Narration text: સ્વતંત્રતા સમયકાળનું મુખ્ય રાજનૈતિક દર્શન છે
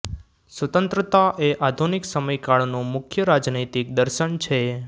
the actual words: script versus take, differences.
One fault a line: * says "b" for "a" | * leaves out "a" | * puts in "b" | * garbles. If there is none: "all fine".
* puts in "એ આધુનિક"